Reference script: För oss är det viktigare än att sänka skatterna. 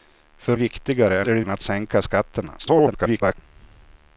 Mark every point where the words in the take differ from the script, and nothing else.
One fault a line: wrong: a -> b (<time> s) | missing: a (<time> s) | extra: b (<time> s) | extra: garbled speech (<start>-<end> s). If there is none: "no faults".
wrong: oss -> viktigare (0.5 s)
missing: viktigare (1.4 s)
extra: garbled speech (2.6-3.4 s)